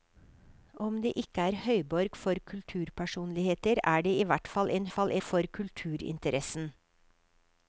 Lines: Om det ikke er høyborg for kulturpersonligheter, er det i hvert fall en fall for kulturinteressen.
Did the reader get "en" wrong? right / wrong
right